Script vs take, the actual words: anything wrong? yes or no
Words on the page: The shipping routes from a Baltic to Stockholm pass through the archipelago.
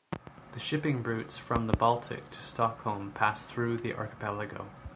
yes